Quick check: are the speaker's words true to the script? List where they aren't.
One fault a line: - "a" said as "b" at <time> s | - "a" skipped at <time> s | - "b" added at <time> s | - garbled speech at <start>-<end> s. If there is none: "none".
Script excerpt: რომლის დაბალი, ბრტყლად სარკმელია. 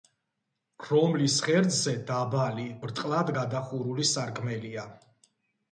- "ღერძზე" added at 1.5 s
- "გადახურული" added at 3.4 s